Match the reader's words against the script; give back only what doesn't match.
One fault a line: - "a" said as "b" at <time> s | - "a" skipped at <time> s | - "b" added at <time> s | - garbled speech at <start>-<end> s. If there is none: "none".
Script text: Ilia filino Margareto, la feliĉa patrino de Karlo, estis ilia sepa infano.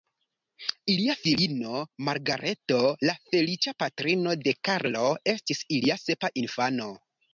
none